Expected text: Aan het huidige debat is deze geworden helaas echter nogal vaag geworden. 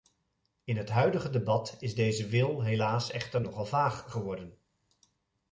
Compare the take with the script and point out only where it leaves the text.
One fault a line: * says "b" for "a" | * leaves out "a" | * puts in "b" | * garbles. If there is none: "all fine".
* says "In" for "Aan"
* says "wil" for "geworden"